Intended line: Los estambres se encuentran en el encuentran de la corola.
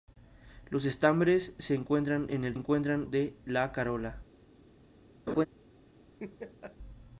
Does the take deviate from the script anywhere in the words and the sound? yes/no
yes